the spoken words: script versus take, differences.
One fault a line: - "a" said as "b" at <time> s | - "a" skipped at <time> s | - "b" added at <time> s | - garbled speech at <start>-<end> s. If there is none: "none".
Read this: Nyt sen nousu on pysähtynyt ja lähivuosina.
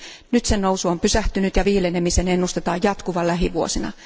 - "viilenemisen ennustetaan jatkuvan" added at 1.6 s